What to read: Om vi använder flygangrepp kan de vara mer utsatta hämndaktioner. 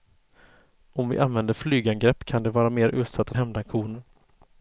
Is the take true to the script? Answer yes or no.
yes